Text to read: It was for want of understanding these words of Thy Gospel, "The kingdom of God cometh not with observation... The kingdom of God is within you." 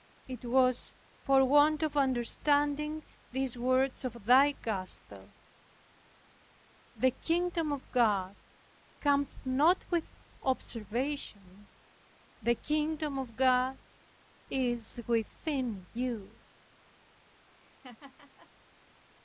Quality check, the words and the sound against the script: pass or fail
fail